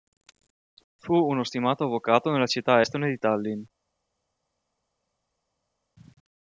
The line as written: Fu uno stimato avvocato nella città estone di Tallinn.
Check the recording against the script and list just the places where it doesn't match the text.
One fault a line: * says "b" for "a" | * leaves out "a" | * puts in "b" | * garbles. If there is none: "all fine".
all fine